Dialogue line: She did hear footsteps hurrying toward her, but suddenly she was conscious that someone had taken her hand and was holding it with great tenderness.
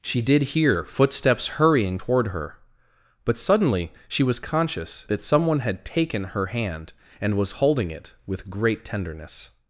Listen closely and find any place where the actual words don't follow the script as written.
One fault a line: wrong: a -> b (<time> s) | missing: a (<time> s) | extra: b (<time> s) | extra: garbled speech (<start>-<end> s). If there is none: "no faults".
no faults